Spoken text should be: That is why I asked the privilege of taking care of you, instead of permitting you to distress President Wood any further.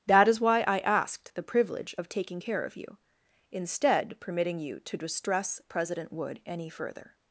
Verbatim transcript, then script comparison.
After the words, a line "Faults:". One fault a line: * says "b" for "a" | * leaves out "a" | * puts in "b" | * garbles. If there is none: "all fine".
That is why I asked the privilege of taking care of you, instead permitting you to distress President Wood any further.
Faults:
* leaves out "of"